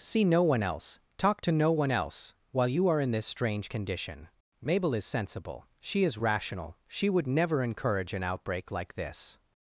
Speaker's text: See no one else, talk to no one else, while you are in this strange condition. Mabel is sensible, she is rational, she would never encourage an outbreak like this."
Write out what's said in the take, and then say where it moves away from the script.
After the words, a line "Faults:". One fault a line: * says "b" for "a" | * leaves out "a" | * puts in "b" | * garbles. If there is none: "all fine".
See no one else, talk to no one else, while you are in this strange condition. Mabel is sensible, she is rational, she would never encourage an outbreak like this."
Faults:
all fine